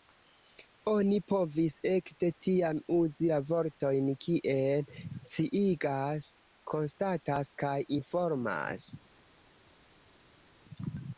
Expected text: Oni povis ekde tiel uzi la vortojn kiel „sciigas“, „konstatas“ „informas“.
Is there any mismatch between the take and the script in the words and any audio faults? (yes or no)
yes